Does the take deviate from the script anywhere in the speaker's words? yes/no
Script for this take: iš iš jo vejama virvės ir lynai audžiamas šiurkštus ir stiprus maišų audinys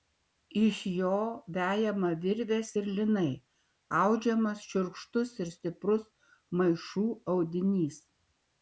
yes